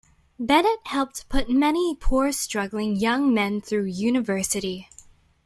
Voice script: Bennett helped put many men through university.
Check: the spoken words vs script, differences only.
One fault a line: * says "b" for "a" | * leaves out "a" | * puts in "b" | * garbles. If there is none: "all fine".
* puts in "poor struggling young"